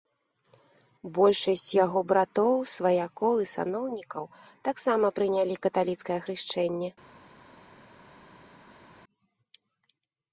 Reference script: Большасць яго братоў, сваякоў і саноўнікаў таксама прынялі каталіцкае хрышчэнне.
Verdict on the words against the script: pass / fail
pass